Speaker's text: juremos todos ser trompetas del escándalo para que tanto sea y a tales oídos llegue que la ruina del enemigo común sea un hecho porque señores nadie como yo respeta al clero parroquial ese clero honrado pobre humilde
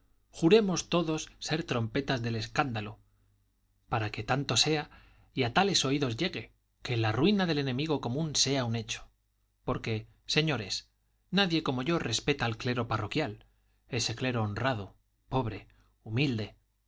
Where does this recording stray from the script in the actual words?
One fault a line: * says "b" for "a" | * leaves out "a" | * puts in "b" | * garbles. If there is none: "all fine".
all fine